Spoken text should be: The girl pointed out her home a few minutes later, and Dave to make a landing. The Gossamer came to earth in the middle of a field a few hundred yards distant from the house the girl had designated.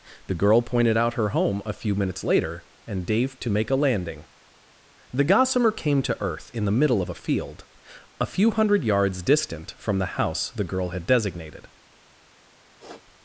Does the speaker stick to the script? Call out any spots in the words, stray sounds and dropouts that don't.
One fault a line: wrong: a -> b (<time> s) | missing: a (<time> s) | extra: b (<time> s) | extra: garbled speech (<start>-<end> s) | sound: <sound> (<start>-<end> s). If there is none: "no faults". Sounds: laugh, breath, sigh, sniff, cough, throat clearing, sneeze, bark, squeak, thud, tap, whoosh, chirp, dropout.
sound: sniff (12.8-13.0 s)